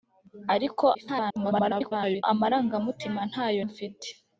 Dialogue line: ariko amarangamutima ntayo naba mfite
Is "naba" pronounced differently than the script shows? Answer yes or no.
yes